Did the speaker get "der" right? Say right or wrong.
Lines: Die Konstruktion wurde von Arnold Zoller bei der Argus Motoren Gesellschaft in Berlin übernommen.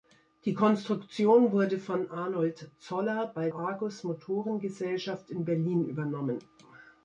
wrong